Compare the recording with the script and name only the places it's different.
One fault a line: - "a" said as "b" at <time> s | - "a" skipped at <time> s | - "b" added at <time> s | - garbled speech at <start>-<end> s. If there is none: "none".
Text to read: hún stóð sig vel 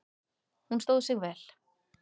none